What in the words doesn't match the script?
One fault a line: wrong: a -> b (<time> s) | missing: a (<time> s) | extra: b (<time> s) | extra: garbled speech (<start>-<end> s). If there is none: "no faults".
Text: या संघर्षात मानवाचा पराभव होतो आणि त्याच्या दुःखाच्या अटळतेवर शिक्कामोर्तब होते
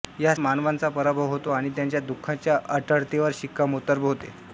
missing: संघर्षात (0.3 s)